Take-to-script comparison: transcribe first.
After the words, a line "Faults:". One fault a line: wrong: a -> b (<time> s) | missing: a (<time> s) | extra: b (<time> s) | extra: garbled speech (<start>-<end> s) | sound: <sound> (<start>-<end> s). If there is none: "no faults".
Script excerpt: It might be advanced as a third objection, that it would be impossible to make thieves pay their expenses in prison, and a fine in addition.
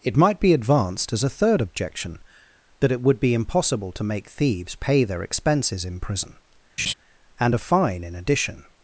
It might be advanced as a third objection, that it would be impossible to make thieves pay their expenses in prison, and a fine in addition.
Faults:
sound: laugh (6.8-6.9 s)